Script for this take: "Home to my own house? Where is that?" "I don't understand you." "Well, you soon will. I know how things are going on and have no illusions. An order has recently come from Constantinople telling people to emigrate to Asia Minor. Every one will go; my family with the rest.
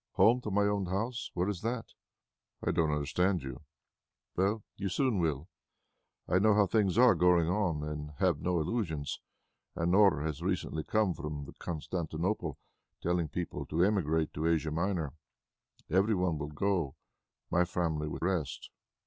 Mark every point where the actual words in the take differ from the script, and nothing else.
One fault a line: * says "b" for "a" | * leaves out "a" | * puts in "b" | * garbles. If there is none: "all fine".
* leaves out "the"